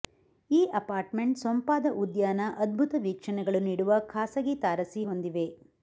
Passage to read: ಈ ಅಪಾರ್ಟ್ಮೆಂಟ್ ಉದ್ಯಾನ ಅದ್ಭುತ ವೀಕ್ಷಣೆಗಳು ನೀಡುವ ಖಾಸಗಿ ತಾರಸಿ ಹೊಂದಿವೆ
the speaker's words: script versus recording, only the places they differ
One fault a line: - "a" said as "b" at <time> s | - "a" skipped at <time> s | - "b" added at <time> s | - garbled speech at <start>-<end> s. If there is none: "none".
- "ಸೊಂಪಾದ" added at 1.4 s